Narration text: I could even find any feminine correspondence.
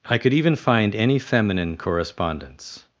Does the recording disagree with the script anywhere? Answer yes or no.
no